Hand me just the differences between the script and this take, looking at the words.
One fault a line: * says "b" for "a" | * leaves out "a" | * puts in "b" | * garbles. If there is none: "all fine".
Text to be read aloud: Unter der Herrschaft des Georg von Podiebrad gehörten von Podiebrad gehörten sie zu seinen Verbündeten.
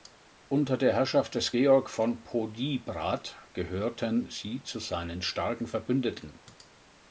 * leaves out "von Podiebrad gehörten"
* puts in "starken"